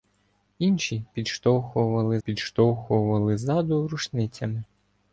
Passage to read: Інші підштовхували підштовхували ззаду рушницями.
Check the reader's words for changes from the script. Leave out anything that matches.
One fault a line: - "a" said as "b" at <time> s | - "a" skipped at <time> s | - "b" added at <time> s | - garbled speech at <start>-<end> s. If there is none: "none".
none